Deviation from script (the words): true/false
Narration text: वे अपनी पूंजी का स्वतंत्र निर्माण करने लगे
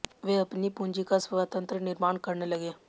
false